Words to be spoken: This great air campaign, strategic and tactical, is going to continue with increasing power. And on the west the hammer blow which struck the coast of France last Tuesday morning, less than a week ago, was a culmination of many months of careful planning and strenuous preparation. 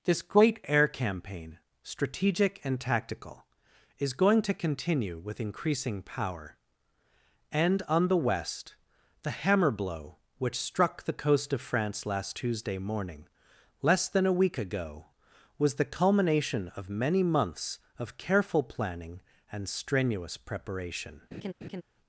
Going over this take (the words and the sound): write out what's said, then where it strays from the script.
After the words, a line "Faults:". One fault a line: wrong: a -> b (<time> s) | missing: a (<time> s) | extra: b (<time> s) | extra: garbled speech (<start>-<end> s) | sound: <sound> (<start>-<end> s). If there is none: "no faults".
This great air campaign, strategic and tactical, is going to continue with increasing power. And on the west the hammer blow which struck the coast of France last Tuesday morning, less than a week ago, was the culmination of many months of careful planning and strenuous preparation.
Faults:
wrong: a -> the (15.7 s)
sound: laugh (21.3-21.8 s)